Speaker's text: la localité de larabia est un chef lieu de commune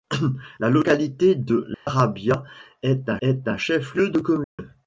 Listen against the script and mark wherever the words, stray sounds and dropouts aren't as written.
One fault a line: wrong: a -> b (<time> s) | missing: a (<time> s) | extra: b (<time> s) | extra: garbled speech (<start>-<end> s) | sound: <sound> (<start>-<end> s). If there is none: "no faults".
sound: dropout (1.7-1.9 s)
extra: est un (3.2 s)
sound: dropout (4.4-4.6 s)